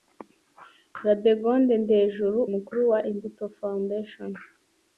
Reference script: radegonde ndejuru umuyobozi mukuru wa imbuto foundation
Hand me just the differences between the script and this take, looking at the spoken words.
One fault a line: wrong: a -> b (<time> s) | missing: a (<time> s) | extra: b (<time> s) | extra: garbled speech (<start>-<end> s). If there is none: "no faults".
missing: umuyobozi (2.4 s)